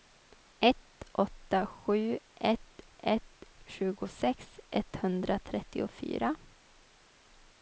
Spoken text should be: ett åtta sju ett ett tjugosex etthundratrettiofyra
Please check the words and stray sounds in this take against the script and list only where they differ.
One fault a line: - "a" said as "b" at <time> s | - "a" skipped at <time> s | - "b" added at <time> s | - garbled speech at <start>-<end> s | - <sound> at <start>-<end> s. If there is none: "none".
none